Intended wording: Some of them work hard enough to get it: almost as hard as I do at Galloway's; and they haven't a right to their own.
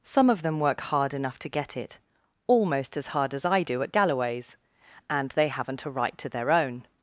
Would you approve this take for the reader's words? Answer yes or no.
yes